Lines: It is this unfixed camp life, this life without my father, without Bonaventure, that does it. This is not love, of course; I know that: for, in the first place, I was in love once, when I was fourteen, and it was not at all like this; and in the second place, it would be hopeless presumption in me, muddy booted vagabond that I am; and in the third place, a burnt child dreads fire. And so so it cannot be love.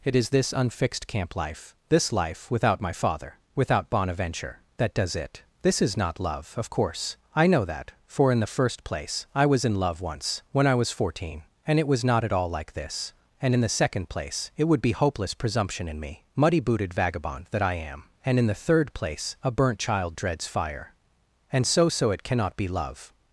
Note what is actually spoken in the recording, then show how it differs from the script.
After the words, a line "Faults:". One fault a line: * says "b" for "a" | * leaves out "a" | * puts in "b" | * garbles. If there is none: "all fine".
It is this unfixed camp life, this life without my father, without Bonaventure, that does it. This is not love, of course; I know that: for, in the first place, I was in love once, when I was fourteen, and it was not at all like this; and in the second place, it would be hopeless presumption in me, muddy booted vagabond that I am; and in the third place, a burnt child dreads fire. And so so it cannot be love.
Faults:
all fine